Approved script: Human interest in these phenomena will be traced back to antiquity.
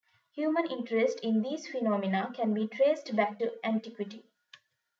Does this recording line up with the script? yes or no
no